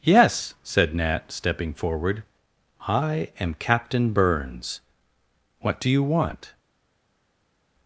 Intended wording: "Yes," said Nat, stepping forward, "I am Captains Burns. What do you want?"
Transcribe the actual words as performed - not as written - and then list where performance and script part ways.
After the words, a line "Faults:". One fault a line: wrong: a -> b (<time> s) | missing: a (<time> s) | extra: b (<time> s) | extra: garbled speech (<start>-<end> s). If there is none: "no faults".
"Yes," said Nat, stepping forward, "I am Captain Burns. What do you want?"
Faults:
wrong: Captains -> Captain (3.5 s)